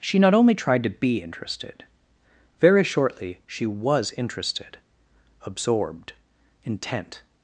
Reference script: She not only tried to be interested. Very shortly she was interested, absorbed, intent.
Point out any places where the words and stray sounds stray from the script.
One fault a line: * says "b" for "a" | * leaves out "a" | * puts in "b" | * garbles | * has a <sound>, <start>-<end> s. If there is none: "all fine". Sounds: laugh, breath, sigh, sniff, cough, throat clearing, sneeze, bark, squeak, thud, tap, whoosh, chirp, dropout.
all fine